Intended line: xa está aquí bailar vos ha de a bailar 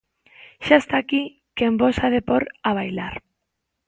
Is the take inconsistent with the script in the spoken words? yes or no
yes